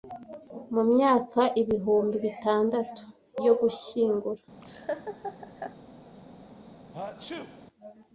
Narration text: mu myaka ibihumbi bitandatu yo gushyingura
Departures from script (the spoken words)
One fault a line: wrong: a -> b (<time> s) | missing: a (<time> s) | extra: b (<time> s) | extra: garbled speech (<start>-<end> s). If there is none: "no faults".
no faults